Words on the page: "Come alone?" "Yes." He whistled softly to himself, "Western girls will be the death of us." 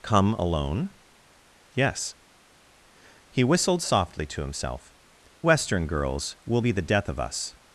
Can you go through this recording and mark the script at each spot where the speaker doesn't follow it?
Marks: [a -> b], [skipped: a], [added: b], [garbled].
"Come alone?" "Yes." He whistled softly to himself, "Western girls will be the death of us."